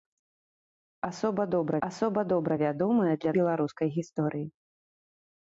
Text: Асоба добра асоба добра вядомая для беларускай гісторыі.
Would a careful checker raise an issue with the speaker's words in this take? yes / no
no